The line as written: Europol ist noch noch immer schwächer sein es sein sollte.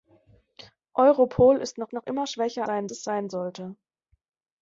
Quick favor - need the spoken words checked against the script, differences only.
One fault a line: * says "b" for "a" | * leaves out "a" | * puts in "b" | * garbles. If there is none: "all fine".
all fine